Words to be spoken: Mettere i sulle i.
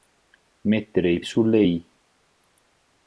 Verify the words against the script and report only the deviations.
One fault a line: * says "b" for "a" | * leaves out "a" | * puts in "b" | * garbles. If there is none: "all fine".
all fine